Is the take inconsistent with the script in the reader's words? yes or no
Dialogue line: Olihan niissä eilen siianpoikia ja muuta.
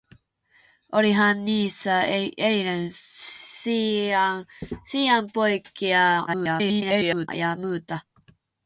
yes